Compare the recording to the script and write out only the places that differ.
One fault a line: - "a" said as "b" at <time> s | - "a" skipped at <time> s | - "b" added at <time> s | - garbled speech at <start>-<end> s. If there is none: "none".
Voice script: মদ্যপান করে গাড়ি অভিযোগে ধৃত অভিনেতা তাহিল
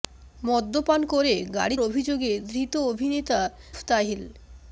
none